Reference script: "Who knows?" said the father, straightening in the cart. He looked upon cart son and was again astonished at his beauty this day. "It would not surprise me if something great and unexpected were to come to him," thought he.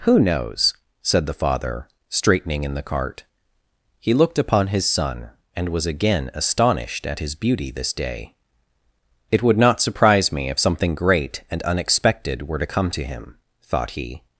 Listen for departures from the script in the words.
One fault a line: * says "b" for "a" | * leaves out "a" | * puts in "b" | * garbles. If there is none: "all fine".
* says "his" for "cart"